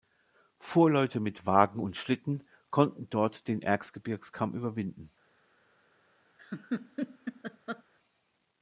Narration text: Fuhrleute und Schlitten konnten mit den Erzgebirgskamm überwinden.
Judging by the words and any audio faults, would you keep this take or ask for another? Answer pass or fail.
fail